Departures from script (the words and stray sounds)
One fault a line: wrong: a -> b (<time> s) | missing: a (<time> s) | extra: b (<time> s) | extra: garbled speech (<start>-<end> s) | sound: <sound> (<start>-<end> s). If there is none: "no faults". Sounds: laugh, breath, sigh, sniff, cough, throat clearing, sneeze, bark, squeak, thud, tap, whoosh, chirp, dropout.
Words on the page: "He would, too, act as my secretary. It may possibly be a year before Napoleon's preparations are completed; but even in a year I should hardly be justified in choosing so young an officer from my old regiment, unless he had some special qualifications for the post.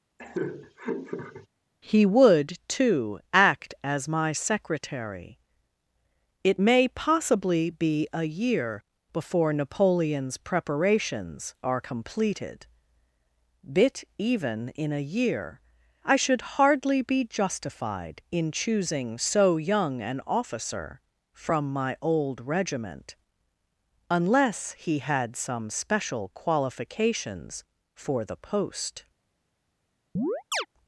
sound: laugh (0.2-1.5 s)
wrong: but -> bit (13.6 s)
sound: chirp (30.2-30.7 s)